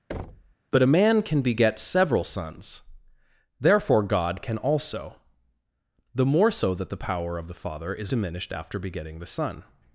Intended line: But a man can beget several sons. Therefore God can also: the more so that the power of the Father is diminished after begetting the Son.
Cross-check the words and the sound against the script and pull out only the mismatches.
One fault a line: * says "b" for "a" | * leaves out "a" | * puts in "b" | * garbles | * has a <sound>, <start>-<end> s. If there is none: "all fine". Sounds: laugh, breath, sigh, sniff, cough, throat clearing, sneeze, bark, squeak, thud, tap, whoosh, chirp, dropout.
* has a thud, 0.1-0.5 s